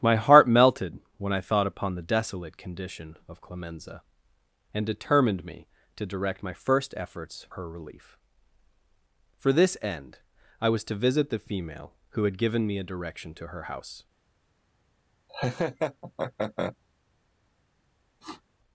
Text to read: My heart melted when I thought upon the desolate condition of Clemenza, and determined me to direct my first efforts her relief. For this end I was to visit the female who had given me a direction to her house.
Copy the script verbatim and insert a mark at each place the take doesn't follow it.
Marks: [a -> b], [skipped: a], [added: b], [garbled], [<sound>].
My heart melted when I thought upon the desolate condition of Clemenza, and determined me to direct my first efforts her relief. For this end I was to visit the female who had given me a direction to her house. [laugh] [sniff]